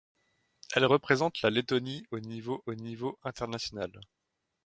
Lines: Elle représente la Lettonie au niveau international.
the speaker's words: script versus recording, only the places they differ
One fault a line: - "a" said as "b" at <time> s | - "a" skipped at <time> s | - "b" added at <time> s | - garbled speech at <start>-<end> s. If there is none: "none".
- "au niveau" added at 2.6 s